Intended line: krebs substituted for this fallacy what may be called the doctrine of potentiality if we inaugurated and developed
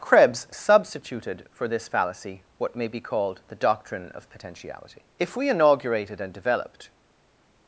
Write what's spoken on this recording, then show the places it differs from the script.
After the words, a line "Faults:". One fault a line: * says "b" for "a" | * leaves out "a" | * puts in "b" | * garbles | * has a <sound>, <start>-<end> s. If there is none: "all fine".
krebs substituted for this fallacy what may be called the doctrine of potentiality if we inaugurated and developed
Faults:
all fine